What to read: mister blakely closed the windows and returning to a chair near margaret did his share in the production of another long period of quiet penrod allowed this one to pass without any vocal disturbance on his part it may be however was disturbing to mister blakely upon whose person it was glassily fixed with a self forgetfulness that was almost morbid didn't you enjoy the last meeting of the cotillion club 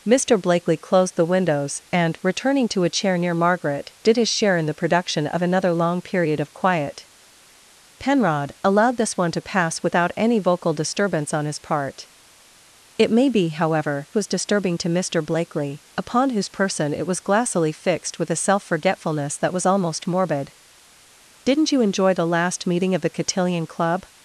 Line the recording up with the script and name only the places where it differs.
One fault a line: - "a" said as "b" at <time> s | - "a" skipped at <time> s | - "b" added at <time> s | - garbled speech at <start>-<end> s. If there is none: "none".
none